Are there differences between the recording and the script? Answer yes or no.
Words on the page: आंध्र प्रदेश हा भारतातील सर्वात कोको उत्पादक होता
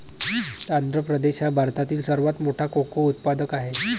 yes